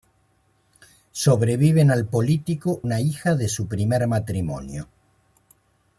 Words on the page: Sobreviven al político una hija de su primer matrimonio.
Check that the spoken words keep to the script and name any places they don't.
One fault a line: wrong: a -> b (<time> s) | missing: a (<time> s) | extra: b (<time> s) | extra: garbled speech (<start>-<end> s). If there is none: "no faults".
no faults